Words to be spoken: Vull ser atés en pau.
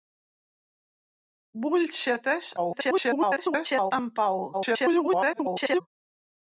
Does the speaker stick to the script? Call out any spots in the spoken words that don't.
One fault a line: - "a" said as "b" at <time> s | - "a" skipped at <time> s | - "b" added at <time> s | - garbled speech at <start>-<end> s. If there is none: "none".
- garbled speech at 2.6-3.9 s
- garbled speech at 4.5-5.8 s